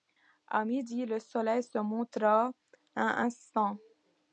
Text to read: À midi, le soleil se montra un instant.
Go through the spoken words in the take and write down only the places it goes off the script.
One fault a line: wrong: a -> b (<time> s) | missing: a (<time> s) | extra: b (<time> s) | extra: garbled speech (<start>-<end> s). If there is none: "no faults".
no faults